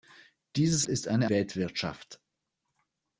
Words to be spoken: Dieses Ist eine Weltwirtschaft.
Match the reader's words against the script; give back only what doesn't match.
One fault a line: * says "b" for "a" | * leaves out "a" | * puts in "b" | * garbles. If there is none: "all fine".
all fine